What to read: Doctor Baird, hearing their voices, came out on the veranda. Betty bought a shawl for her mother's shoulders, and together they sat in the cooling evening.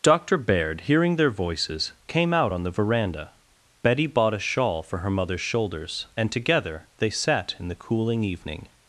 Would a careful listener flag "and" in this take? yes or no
no